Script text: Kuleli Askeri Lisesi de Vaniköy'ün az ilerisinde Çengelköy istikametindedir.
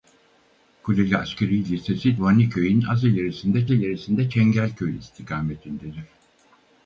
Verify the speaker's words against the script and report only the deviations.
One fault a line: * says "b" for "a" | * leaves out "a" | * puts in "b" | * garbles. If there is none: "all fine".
* leaves out "de"
* puts in "ilerisinde"